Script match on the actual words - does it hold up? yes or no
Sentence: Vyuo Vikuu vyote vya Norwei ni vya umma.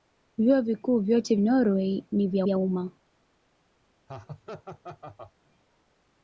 no